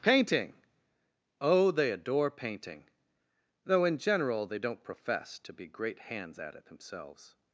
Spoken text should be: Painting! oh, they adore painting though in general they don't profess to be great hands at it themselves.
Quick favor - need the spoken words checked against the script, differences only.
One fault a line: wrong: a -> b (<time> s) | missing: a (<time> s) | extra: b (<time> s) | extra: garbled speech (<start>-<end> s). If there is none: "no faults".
no faults